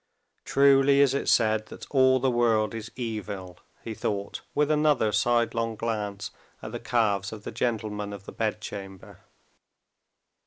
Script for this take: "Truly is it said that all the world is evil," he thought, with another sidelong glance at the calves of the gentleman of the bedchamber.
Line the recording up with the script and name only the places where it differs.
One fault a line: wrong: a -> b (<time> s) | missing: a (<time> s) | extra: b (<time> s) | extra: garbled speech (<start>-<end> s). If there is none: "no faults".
no faults